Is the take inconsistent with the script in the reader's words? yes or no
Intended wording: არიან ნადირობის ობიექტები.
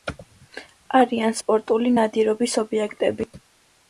yes